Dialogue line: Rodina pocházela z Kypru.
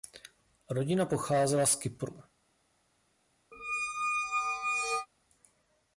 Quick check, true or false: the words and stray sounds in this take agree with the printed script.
false